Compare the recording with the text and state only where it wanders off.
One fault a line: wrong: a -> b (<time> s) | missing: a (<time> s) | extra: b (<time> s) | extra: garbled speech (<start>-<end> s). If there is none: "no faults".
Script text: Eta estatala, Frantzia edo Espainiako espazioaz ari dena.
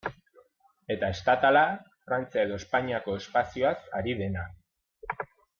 no faults